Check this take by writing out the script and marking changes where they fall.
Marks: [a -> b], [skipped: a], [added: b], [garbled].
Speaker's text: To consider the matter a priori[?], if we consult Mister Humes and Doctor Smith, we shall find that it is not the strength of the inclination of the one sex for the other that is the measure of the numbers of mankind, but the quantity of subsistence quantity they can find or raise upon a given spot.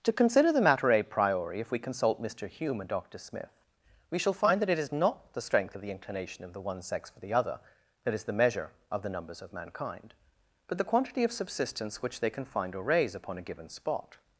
To consider the matter a priori[?], if we consult Mister [Humes -> Hume] and Doctor Smith, we shall find that it is not the strength of the inclination of the one sex for the other that is the measure of the numbers of mankind, but the quantity of subsistence [quantity -> which] they can find or raise upon a given spot.